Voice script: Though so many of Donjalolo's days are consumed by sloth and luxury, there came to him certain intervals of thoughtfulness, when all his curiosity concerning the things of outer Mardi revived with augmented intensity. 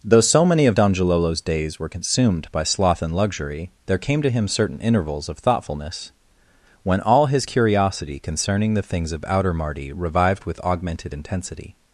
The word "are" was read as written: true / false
false